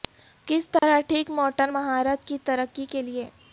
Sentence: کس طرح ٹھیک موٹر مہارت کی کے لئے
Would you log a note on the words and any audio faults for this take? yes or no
yes